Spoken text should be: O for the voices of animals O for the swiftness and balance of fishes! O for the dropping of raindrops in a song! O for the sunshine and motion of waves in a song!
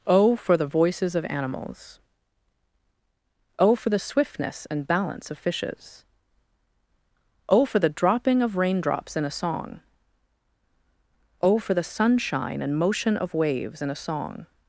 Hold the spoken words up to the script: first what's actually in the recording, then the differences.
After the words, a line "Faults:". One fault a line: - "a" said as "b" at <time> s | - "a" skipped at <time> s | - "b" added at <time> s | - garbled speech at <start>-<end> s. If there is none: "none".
O for the voices of animals O for the swiftness and balance of fishes! O for the dropping of raindrops in a song! O for the sunshine and motion of waves in a song!
Faults:
none